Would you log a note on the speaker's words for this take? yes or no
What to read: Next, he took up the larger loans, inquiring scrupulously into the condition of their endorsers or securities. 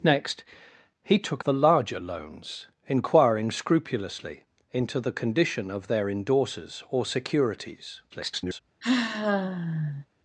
yes